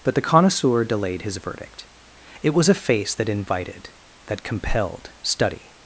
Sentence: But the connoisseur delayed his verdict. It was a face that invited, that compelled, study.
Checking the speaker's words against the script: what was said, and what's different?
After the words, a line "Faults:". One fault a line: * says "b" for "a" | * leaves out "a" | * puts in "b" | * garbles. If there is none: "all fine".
But the connoisseur delayed his verdict. It was a face that invited, that compelled, study.
Faults:
all fine